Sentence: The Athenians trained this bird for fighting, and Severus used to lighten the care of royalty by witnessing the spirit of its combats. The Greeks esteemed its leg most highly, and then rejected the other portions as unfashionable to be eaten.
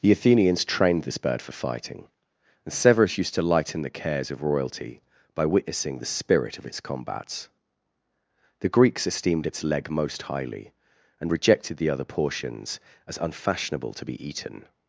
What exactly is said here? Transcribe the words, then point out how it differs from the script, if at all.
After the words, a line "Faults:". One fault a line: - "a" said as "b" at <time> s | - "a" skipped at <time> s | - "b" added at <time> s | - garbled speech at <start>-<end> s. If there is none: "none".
The Athenians trained this bird for fighting, and Severus used to lighten the cares of royalty by witnessing the spirit of its combats. The Greeks esteemed its leg most highly, and rejected the other portions as unfashionable to be eaten.
Faults:
- "care" said as "cares" at 4.0 s
- "then" skipped at 11.3 s